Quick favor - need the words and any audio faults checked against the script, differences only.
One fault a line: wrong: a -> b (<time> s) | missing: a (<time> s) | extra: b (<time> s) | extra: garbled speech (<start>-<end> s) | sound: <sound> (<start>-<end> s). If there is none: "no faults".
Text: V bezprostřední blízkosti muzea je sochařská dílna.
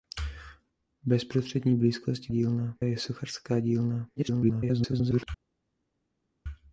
wrong: muzea -> dílna (2.3 s)
extra: garbled speech (4.2-5.3 s)